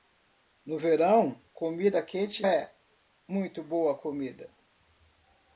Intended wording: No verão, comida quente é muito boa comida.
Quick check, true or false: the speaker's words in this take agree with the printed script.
true